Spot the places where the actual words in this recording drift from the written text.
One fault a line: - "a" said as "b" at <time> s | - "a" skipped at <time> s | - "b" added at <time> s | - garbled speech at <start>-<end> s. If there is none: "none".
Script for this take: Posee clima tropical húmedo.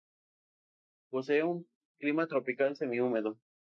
- "un" added at 1.4 s
- "semi" added at 2.8 s